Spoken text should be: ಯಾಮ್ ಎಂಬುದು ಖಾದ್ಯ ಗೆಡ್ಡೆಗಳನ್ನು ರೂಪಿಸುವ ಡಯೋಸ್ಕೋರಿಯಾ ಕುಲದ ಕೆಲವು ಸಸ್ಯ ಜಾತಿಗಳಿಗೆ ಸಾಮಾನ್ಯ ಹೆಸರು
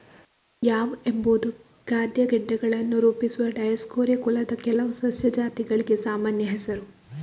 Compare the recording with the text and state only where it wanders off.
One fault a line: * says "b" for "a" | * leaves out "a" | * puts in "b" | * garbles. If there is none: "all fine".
all fine